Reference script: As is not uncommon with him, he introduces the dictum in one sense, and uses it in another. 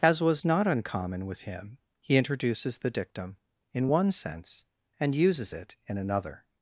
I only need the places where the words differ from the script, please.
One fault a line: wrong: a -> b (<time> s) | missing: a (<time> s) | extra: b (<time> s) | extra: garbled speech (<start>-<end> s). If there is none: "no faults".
wrong: is -> was (0.2 s)